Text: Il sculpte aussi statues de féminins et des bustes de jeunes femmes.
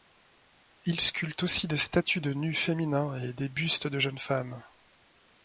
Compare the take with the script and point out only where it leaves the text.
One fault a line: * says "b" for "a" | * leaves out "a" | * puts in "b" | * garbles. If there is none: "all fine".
* puts in "des"
* puts in "nus"